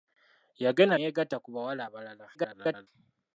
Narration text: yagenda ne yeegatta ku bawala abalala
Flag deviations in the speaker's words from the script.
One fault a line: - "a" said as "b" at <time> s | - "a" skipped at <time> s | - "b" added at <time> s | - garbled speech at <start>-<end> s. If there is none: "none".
- "ne" skipped at 0.9 s
- garbled speech at 2.3-2.9 s